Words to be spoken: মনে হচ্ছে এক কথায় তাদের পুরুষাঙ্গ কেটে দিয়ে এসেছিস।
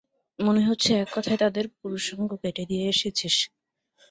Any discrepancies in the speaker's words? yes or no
no